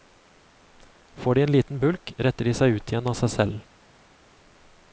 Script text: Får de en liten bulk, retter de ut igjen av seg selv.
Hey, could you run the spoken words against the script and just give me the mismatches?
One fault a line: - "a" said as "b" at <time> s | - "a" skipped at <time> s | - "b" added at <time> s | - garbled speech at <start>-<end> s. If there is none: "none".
- "seg" added at 2.6 s